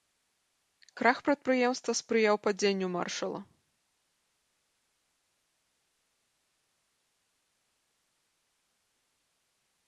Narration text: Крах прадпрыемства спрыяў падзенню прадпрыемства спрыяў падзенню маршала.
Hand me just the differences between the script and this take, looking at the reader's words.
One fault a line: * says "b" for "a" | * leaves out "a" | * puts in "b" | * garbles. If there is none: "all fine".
* leaves out "прадпрыемства спрыяў падзенню"